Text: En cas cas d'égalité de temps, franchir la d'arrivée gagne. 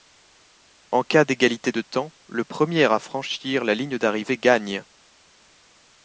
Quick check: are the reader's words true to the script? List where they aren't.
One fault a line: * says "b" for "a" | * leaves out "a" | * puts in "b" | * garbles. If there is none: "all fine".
* leaves out "cas"
* puts in "le premier à"
* puts in "ligne"